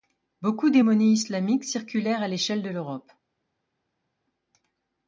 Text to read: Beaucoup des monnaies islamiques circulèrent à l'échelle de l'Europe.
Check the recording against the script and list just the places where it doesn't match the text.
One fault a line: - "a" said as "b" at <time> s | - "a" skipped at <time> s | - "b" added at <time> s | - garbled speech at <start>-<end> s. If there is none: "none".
none